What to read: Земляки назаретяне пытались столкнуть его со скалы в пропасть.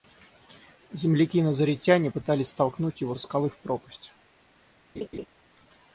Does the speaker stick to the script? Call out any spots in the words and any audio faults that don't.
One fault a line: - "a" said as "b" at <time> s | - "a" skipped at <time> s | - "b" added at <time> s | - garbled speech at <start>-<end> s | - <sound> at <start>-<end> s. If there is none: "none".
- "со" skipped at 3.2 s
- laugh at 4.9-5.3 s